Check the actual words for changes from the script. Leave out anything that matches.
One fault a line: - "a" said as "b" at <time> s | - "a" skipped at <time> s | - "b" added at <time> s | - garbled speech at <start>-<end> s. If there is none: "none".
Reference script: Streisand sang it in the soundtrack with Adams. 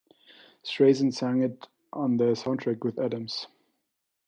- "in" said as "on" at 1.9 s